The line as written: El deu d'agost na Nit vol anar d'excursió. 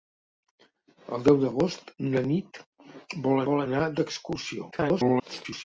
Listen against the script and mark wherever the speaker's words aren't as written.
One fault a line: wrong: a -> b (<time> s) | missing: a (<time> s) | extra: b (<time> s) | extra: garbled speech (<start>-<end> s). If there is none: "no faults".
extra: vol (3.5 s)
extra: garbled speech (4.7-5.6 s)